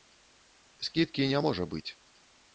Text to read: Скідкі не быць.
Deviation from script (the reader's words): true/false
true